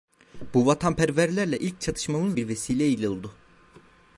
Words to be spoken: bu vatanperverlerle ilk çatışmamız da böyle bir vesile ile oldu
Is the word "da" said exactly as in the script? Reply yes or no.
no